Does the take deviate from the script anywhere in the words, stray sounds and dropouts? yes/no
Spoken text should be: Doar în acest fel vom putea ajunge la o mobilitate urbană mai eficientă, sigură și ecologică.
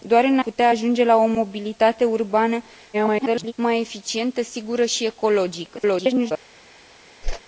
yes